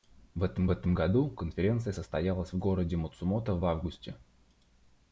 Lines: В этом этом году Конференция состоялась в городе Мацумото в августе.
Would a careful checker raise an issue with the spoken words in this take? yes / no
no